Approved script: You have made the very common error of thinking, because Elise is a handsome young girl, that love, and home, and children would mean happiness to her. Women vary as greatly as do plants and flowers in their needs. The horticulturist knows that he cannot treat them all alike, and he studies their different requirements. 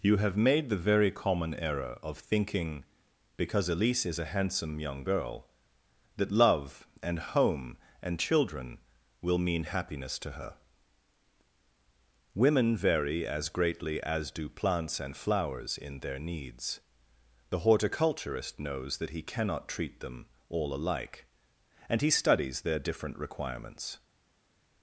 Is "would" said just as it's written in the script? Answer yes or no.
no